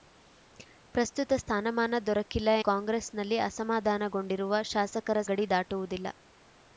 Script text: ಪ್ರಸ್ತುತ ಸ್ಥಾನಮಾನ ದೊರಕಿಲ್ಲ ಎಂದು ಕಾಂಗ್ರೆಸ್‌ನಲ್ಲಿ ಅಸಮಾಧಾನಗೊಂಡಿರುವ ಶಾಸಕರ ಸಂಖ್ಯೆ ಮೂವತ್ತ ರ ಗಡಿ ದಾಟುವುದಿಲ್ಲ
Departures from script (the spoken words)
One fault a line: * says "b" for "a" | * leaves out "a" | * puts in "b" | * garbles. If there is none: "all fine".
* leaves out "ಎಂದು"
* leaves out "ಸಂಖ್ಯೆ ಮೂವತ್ತ ರ"